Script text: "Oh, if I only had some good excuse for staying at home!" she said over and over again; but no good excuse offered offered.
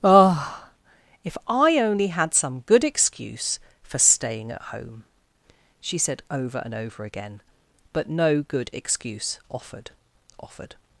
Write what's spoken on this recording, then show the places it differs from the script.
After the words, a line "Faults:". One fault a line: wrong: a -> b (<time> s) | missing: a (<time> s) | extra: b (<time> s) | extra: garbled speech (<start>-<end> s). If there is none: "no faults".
"Oh, if I only had some good excuse for staying at home!" she said over and over again; but no good excuse offered offered.
Faults:
no faults